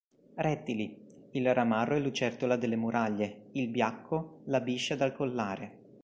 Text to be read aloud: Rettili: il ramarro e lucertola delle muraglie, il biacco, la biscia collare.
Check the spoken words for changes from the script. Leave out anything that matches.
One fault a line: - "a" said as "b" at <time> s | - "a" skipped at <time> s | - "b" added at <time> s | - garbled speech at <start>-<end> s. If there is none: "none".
- "dal" added at 5.0 s